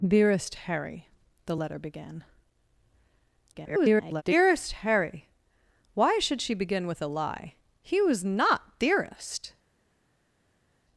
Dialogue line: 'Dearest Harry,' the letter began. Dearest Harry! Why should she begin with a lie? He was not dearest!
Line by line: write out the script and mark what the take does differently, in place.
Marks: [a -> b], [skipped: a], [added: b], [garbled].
'Dearest Harry,' the letter began. [garbled] Dearest Harry! Why should she begin with a lie? He was not dearest!